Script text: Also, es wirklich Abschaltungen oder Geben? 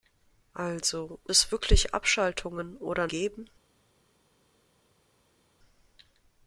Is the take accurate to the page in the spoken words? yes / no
yes